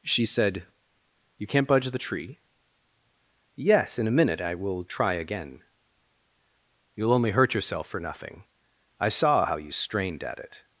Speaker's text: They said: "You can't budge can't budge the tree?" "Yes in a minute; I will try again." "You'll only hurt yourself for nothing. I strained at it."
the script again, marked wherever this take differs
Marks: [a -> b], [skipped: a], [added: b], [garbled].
[They -> She] said: "You can't budge [skipped: can't budge] the tree?" "Yes in a minute; I will try again." "You'll only hurt yourself for nothing. I [added: saw how you] strained at it."